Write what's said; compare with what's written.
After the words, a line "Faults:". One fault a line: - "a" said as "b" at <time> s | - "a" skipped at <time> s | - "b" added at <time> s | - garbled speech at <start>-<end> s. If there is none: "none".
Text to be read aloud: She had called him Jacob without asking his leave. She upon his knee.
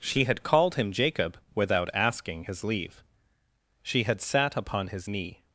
She had called him Jacob without asking his leave. She had sat upon his knee.
Faults:
- "had sat" added at 4.0 s